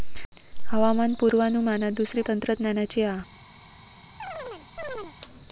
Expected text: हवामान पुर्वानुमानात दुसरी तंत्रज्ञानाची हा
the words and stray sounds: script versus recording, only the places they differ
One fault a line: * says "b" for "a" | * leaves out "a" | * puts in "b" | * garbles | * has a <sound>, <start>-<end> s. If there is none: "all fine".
* has a chirp, 4.2-5.2 s